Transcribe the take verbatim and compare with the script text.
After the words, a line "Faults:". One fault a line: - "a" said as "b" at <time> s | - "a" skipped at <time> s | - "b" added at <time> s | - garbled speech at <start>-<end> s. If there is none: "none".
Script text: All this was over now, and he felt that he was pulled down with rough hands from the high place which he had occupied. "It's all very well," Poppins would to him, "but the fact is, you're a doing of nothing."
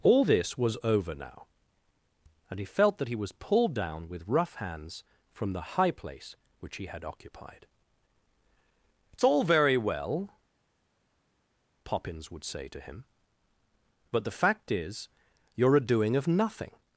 All this was over now, and he felt that he was pulled down with rough hands from the high place which he had occupied. "It's all very well," Poppins would say to him, "but the fact is, you're a doing of nothing."
Faults:
- "say" added at 12.4 s